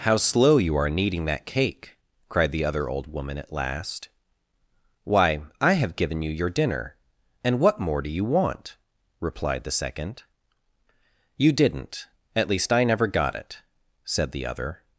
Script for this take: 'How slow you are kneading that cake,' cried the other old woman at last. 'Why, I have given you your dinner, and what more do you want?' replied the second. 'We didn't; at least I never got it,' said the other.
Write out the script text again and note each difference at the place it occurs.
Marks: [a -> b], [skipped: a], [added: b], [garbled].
'How slow you are kneading that cake,' cried the other old woman at last. 'Why, I have given you your dinner, and what more do you want?' replied the second. ['We -> You] didn't; at least I never got it,' said the other.